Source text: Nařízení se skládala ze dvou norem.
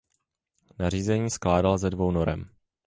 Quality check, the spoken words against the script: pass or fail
fail